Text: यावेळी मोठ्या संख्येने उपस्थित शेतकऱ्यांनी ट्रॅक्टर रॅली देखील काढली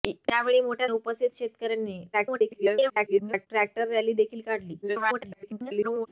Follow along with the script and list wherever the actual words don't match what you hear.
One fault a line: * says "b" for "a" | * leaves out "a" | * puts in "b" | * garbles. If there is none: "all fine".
* leaves out "संख्येने"
* garbles
* garbles